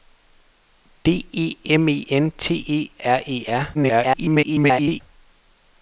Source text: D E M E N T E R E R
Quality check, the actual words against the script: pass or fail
fail